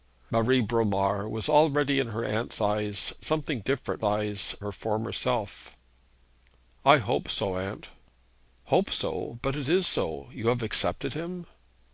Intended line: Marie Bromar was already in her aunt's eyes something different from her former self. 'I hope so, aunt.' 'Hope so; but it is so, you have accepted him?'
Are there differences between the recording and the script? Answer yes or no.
yes